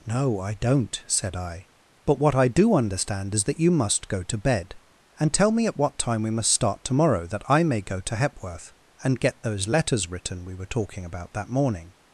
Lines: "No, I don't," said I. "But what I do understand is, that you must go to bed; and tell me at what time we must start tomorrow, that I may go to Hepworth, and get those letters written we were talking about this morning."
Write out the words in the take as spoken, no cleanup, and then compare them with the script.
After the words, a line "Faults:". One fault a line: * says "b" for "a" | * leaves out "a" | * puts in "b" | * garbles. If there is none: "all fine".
"No, I don't," said I. "But what I do understand is, that you must go to bed; and tell me at what time we must start tomorrow, that I may go to Hepworth, and get those letters written we were talking about that morning."
Faults:
* says "that" for "this"